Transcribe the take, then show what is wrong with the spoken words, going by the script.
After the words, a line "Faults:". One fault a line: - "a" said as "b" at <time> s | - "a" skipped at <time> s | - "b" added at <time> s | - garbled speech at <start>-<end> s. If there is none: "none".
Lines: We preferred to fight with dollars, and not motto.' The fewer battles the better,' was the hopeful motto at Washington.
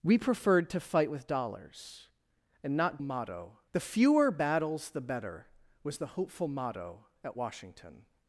We preferred to fight with dollars, and not motto.' The fewer battles the better,' was the hopeful motto at Washington.
Faults:
none